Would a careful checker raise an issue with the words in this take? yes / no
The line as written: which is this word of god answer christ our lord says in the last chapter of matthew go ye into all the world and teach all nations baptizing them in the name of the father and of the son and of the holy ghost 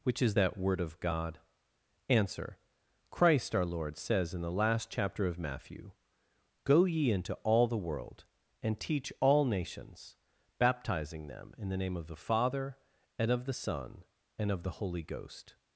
yes